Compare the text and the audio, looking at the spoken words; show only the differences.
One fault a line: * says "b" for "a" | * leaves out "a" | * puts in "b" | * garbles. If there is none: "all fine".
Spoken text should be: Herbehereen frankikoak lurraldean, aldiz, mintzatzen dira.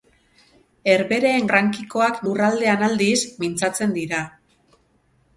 all fine